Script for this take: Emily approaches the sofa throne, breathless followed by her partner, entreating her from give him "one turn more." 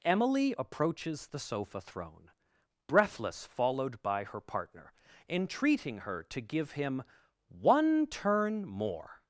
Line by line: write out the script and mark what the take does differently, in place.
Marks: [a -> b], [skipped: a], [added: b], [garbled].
Emily approaches the sofa throne, breathless followed by her partner, entreating her [from -> to] give him "one turn more."